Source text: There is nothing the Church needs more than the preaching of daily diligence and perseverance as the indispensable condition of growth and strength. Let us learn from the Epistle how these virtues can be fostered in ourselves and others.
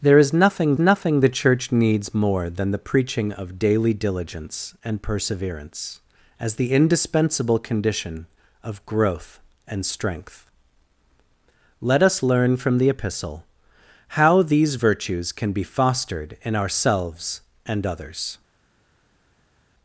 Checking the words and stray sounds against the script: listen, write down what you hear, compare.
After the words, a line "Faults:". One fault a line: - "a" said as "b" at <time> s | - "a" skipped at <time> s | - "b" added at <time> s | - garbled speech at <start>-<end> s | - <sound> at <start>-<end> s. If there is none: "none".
There is nothing nothing the Church needs more than the preaching of daily diligence and perseverance as the indispensable condition of growth and strength. Let us learn from the Epistle how these virtues can be fostered in ourselves and others.
Faults:
- "nothing" added at 0.8 s